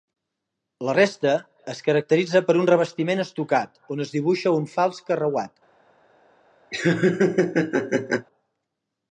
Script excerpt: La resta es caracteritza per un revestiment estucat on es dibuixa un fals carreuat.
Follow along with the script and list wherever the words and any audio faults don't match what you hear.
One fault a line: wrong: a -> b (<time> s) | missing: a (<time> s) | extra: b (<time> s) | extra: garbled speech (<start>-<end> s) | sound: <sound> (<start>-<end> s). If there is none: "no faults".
sound: laugh (6.7-8.3 s)